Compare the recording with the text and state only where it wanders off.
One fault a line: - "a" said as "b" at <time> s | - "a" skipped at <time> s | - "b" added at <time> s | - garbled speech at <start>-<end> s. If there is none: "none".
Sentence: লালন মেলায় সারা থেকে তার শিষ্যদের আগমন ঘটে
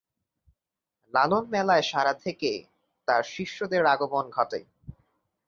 none